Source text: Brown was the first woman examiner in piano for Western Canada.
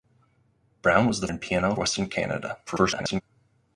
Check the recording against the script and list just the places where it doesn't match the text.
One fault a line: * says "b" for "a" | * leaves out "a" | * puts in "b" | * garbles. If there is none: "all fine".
* leaves out "first woman examiner"
* leaves out "for"
* garbles